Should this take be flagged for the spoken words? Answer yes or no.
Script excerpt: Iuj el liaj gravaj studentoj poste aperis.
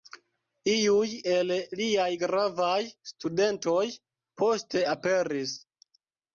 no